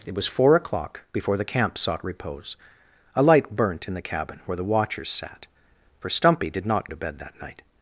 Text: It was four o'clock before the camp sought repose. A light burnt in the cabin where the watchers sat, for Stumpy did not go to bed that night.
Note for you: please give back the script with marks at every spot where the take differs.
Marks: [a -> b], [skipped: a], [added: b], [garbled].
It was four o'clock before the camp sought repose. A light burnt in the cabin where the watchers sat, for Stumpy did not [skipped: go] to bed that night.